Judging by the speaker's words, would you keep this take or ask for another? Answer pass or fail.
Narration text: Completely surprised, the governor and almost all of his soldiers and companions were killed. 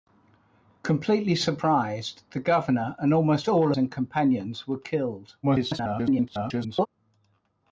fail